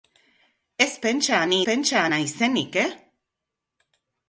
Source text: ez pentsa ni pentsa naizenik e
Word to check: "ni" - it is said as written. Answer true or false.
true